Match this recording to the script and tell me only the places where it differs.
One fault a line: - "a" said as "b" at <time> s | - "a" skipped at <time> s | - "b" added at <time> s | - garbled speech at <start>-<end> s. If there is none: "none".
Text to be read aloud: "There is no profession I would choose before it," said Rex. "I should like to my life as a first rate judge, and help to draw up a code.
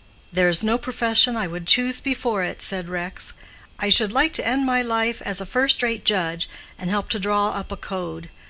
- "end" added at 4.5 s